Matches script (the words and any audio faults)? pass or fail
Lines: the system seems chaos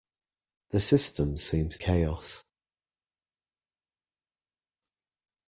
pass